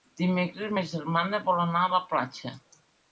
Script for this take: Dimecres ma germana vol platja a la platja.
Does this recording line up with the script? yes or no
no